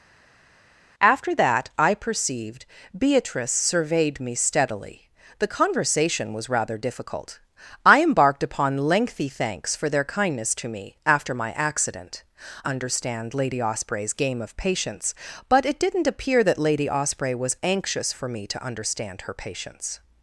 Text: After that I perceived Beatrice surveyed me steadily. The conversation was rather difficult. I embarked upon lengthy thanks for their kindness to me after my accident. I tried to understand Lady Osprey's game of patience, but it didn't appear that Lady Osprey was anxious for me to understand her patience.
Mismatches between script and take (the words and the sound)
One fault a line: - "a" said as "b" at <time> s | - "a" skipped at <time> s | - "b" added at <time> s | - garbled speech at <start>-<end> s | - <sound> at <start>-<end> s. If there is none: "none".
- "I tried to" skipped at 12.2 s